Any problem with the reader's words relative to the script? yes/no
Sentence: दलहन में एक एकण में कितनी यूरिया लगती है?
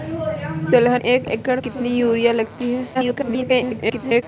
yes